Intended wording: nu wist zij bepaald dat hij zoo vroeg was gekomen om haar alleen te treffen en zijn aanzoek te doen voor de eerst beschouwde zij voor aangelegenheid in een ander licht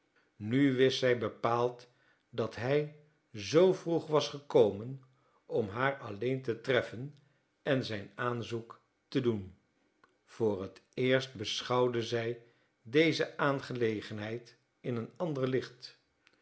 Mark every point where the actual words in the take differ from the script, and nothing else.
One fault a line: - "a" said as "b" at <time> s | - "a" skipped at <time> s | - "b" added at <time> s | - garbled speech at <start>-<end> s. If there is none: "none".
- "de" said as "het" at 10.6 s
- "voor" said as "deze" at 12.8 s